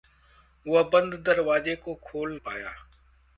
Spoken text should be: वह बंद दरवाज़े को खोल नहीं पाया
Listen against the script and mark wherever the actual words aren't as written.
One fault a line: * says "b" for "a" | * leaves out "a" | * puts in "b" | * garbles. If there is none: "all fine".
* leaves out "नहीं"